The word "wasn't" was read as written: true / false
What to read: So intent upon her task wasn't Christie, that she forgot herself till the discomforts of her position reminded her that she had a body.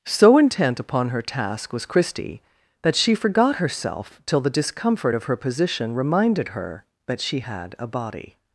false